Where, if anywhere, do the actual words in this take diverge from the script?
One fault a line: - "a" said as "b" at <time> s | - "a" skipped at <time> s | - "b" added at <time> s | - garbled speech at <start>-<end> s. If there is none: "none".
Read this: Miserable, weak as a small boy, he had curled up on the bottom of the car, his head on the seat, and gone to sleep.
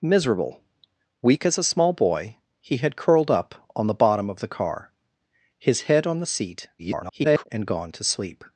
- garbled speech at 6.8-7.5 s